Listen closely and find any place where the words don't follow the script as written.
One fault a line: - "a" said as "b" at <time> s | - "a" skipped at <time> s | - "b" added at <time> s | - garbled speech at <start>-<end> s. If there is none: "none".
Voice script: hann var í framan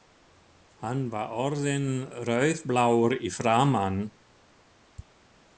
- "orðinn rauðblár" added at 1.4 s